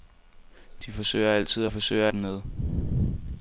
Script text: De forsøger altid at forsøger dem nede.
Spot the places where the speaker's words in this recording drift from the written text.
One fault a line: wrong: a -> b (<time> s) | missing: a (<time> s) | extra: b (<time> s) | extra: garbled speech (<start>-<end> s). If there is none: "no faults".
no faults